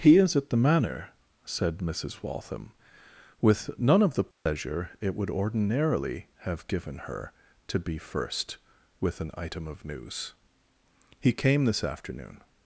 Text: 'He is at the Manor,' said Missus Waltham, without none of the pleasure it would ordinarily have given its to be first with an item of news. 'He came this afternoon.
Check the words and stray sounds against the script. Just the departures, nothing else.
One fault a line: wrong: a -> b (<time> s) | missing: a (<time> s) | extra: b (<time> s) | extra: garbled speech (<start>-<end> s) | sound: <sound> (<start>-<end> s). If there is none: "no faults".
wrong: without -> with (3.4 s)
sound: dropout (4.3-4.5 s)
wrong: its -> her (7.0 s)